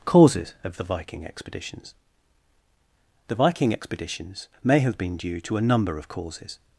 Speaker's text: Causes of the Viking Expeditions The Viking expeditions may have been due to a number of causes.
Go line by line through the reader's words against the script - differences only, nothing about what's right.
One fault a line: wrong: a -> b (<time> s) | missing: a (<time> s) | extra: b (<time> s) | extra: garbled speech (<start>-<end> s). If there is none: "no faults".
no faults